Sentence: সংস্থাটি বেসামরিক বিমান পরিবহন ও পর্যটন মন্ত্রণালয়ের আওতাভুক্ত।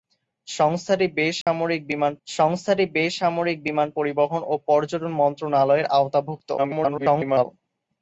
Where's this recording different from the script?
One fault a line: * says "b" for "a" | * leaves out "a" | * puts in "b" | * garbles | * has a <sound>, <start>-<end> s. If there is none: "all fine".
* has a dropout, 1.4-1.5 s
* puts in "সংস্থাটি বেসামরিক বিমান"
* garbles